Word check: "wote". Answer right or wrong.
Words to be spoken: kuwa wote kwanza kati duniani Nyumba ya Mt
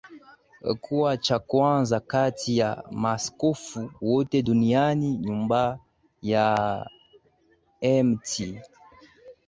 wrong